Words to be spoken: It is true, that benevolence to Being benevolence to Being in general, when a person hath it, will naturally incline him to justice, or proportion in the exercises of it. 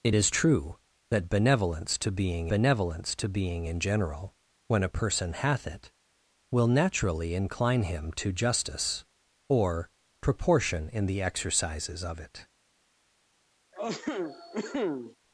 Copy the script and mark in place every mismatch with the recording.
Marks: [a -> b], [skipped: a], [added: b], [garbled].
It is true, that benevolence to Being benevolence to Being in general, when a person hath it, will naturally incline him to justice, or proportion in the exercises of it.